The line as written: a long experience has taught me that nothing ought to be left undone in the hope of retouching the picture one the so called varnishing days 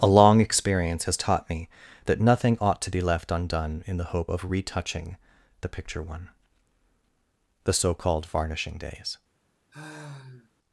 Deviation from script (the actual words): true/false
false